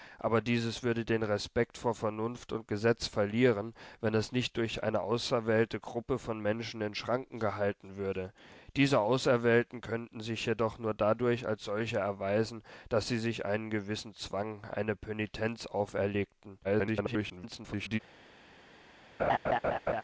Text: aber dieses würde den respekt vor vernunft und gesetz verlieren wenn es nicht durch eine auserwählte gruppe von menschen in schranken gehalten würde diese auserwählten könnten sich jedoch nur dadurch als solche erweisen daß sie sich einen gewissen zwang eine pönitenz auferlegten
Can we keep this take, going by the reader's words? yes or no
no